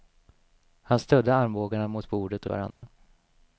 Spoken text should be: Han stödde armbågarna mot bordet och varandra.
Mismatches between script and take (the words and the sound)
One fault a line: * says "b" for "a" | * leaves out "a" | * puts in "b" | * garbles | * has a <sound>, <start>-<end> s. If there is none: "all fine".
* has a dropout, 2.7-2.8 s